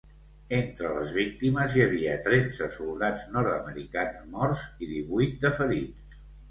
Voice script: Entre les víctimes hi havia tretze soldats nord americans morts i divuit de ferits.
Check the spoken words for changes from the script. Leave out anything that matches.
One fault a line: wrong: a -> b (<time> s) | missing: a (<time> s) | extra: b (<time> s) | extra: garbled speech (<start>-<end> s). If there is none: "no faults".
no faults